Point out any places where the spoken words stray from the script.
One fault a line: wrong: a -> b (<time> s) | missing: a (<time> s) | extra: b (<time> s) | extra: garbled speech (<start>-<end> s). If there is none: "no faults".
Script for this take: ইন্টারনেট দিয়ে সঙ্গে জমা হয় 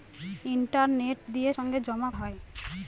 no faults